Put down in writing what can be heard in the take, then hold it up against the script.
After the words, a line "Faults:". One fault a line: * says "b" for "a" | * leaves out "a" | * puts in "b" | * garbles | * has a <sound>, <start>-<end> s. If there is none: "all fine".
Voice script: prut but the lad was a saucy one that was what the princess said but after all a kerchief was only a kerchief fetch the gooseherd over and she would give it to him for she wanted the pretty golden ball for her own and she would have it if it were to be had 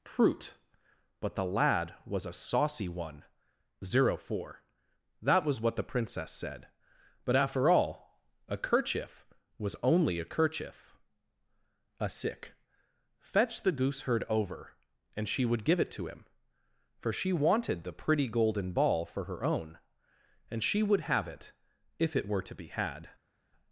prut but the lad was a saucy one zero four that was what the princess said but after all a kerchief was only a kerchief a sick fetch the gooseherd over and she would give it to him for she wanted the pretty golden ball for her own and she would have it if it were to be had
Faults:
* puts in "zero four"
* puts in "a sick"